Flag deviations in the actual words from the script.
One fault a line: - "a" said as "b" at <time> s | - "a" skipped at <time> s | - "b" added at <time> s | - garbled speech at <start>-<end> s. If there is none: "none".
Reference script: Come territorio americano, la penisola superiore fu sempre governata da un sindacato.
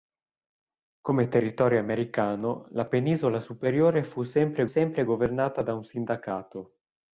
- "sempre" added at 4.6 s